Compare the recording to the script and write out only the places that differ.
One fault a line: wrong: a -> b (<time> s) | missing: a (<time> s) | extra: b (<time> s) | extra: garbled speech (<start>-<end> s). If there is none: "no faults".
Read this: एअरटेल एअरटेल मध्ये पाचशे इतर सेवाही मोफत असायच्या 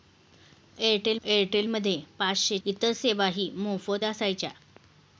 no faults